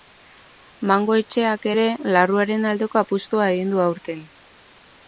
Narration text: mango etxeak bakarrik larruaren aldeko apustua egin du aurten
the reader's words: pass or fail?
fail